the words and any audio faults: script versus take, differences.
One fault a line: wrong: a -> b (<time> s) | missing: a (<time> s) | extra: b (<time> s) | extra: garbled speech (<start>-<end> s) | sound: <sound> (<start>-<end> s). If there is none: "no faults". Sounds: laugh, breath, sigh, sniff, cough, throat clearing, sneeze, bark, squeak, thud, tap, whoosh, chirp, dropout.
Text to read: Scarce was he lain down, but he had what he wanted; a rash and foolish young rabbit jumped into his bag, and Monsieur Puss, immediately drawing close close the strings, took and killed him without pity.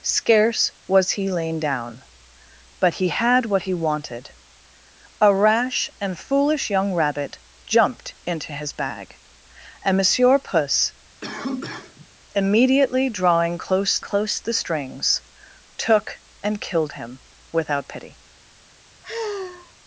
sound: cough (11.2-12.1 s)
sound: sigh (19.0-19.7 s)